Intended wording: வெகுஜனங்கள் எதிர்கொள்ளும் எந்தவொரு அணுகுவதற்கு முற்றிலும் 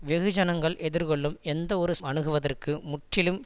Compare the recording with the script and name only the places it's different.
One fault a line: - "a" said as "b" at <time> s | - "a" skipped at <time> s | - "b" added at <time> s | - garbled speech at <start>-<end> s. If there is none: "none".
none